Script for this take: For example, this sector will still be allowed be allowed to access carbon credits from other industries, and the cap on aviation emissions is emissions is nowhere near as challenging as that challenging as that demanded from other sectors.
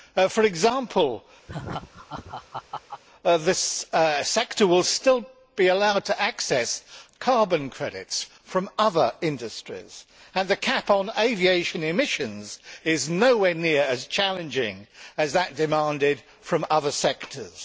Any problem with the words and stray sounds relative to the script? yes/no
yes